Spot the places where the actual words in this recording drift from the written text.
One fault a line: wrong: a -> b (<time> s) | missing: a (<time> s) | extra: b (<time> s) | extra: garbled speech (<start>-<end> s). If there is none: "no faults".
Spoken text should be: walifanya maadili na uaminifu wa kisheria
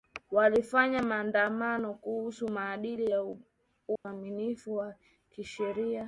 extra: maandamano kuhusu (1.0 s)